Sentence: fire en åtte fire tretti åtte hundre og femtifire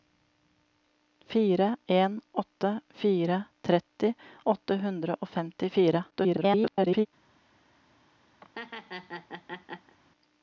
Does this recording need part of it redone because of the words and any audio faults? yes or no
yes